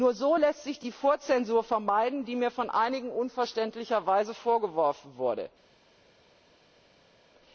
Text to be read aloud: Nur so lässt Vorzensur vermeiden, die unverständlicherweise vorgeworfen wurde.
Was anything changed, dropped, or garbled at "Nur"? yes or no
no